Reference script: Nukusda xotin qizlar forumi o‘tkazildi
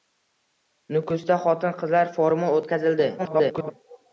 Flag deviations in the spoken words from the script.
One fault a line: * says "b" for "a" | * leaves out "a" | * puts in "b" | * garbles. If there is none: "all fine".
* garbles